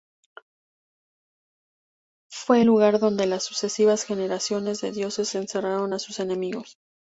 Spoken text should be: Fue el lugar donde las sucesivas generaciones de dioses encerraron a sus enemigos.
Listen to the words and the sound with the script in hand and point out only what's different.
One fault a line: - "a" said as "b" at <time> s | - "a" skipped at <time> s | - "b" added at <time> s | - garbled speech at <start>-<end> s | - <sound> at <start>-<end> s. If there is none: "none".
none